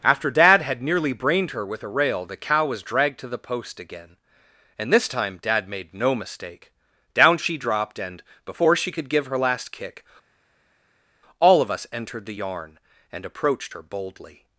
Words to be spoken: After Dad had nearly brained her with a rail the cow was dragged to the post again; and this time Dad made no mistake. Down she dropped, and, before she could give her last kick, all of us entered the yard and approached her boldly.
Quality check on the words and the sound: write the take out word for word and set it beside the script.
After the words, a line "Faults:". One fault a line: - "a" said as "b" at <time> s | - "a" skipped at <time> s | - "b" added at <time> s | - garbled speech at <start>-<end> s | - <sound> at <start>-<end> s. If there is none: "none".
After Dad had nearly brained her with a rail the cow was dragged to the post again; and this time Dad made no mistake. Down she dropped, and, before she could give her last kick, all of us entered the yarn and approached her boldly.
Faults:
- "yard" said as "yarn" at 12.3 s